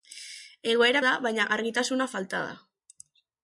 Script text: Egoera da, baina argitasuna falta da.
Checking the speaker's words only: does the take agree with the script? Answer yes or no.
yes